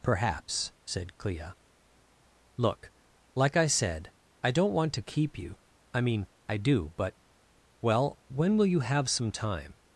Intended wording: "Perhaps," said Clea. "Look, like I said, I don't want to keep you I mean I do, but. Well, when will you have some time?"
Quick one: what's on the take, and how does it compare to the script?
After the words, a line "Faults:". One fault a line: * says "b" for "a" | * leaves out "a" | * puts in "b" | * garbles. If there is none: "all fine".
"Perhaps," said Clea. "Look, like I said, I don't want to keep you I mean I do, but. Well, when will you have some time?"
Faults:
all fine